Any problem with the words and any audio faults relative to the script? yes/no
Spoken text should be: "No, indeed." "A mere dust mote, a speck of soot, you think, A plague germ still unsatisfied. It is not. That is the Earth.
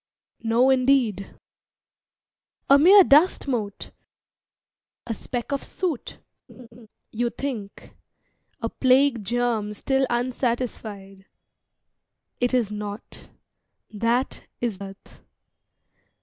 yes